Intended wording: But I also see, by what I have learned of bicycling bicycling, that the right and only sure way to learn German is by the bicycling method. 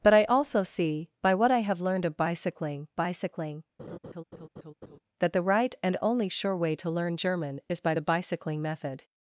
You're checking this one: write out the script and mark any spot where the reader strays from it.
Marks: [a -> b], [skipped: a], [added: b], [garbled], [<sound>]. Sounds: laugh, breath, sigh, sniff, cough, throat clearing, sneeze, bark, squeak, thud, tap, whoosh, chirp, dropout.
But I also see, by what I have learned of bicycling bicycling, [laugh] that the right and only sure way to learn German is by the bicycling method.